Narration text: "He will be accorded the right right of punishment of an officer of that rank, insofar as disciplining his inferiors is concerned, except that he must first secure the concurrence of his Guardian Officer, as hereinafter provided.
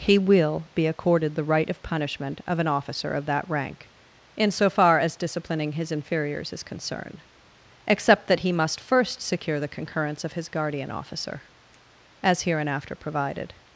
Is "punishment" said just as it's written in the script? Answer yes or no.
yes